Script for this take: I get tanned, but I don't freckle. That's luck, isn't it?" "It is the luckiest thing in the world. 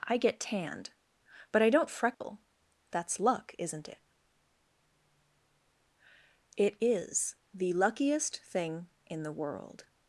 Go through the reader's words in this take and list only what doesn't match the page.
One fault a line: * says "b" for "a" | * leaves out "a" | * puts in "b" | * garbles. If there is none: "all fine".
all fine